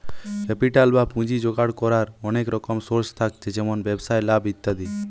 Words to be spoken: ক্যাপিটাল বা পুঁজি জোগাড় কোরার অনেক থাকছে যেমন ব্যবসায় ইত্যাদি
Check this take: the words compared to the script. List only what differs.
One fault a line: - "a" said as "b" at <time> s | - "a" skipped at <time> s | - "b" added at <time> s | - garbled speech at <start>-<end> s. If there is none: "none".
- "রকম সোর্স" added at 2.5 s
- "লাভ" added at 4.3 s